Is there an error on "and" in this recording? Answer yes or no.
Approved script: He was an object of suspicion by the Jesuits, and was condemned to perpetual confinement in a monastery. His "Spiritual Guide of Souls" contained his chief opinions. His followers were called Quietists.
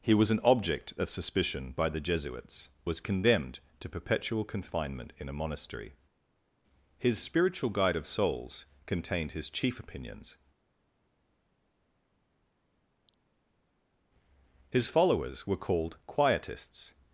yes